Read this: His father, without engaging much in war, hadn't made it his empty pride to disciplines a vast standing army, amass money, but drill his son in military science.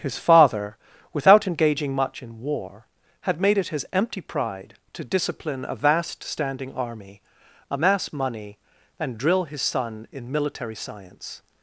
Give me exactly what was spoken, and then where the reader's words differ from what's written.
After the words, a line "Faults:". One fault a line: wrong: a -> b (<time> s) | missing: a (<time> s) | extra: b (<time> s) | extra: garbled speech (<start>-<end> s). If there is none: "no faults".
His father, without engaging much in war, had made it his empty pride to discipline a vast standing army, amass money, and drill his son in military science.
Faults:
wrong: hadn't -> had (3.2 s)
wrong: disciplines -> discipline (5.0 s)
wrong: but -> and (9.0 s)